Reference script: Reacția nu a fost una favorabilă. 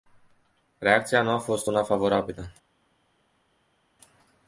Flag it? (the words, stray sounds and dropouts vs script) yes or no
no